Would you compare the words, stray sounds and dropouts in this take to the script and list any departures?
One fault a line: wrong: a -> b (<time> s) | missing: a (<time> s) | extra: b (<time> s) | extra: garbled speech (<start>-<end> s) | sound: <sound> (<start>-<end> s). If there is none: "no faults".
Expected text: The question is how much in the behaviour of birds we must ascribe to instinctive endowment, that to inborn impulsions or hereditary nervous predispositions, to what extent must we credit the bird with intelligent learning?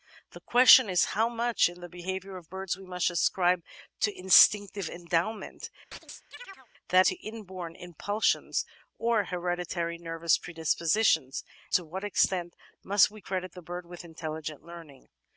sound: chirp (5.9-6.7 s)